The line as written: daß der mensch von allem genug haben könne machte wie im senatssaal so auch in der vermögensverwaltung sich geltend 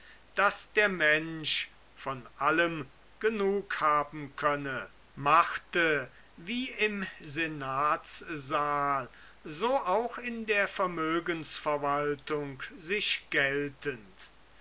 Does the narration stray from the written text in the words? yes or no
no